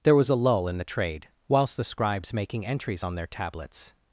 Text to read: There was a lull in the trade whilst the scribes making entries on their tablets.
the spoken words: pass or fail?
pass